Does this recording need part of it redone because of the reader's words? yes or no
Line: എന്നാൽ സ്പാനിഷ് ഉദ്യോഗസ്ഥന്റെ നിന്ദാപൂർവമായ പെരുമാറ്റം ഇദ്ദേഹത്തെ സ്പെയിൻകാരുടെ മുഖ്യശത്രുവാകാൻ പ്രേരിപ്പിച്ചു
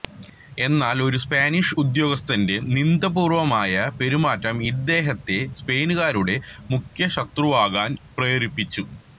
yes